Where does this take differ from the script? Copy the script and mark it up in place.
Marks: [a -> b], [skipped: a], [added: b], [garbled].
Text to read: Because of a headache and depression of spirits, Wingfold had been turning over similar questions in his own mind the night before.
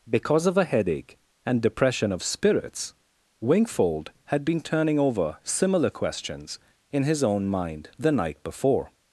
Because of a headache and depression of spirits, Wingfold had been turning over similar questions in his own mind the night before.